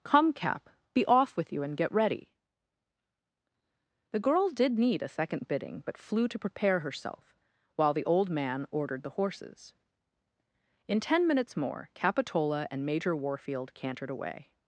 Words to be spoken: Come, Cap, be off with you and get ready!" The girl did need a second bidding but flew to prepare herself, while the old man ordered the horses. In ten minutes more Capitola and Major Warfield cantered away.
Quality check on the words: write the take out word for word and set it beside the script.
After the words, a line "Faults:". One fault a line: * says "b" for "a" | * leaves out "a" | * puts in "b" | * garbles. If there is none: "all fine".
Come, Cap, be off with you and get ready!" The girl did need a second bidding but flew to prepare herself, while the old man ordered the horses. In ten minutes more Capitola and Major Warfield cantered away.
Faults:
all fine